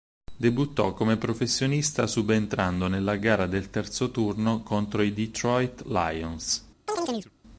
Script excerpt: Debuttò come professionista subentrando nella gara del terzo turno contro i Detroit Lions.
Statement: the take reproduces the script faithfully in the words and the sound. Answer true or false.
false